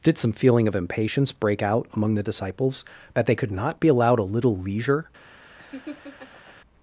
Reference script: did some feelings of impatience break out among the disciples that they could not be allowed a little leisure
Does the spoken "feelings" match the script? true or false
false